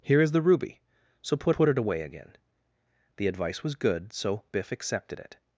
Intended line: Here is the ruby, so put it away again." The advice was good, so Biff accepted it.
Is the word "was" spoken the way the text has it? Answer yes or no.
yes